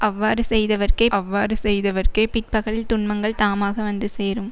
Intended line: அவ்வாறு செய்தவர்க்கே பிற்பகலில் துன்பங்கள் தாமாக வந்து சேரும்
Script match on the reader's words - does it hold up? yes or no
no